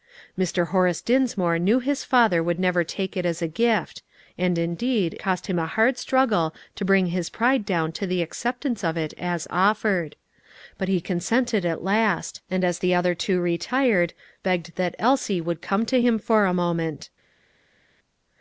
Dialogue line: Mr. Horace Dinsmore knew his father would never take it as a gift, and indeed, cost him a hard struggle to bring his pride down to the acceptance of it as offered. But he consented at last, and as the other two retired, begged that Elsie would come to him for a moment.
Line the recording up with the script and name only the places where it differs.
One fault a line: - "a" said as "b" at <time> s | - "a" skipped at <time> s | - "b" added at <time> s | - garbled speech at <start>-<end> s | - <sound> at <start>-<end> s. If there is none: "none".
none